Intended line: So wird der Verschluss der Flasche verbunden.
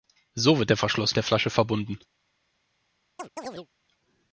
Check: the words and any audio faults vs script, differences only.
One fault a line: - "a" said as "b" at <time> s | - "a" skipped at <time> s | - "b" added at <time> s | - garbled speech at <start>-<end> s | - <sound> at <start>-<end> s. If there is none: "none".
- chirp at 3.2-3.7 s